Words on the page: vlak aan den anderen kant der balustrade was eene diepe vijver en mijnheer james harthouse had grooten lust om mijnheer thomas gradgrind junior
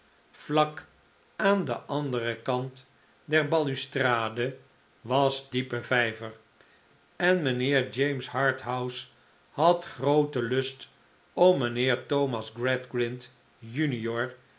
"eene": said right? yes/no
no